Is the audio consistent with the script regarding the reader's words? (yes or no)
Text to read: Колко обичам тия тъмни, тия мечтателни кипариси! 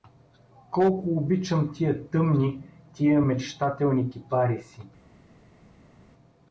yes